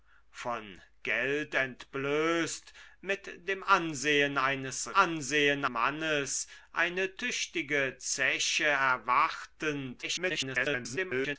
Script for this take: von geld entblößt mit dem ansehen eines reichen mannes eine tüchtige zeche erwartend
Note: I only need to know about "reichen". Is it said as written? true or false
false